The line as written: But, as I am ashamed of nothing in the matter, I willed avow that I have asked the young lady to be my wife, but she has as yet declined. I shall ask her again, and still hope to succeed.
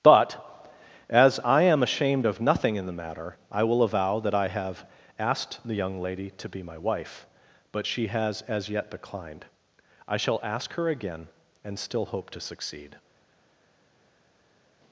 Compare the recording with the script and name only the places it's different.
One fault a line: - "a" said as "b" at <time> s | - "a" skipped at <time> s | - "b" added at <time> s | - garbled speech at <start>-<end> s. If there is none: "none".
- "willed" said as "will" at 3.6 s